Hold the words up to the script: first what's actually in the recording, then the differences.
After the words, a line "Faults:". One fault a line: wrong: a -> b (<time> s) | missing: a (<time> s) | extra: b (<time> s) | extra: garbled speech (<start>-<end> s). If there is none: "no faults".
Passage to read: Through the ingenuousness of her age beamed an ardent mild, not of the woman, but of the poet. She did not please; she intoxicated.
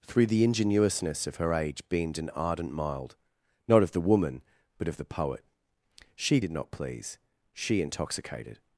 Through the ingenuousness of her age beamed an ardent mild, not of the woman, but of the poet. She did not please; she intoxicated.
Faults:
no faults